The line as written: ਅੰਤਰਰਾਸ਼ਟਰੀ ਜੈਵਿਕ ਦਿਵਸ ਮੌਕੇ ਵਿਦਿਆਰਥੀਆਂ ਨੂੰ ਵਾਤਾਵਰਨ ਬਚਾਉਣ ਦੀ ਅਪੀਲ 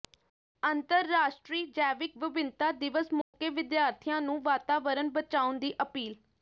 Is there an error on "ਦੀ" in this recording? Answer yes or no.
no